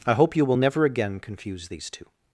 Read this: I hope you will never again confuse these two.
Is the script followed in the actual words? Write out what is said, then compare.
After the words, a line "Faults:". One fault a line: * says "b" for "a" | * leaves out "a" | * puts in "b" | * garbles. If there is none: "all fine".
I hope you will never again confuse these two.
Faults:
all fine